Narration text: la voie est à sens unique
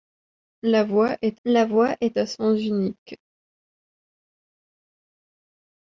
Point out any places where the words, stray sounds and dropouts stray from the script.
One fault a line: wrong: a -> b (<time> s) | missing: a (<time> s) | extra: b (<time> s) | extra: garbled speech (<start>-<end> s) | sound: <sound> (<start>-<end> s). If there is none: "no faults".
extra: la voie est (1.5 s)